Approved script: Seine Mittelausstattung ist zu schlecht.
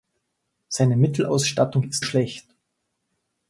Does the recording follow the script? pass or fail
fail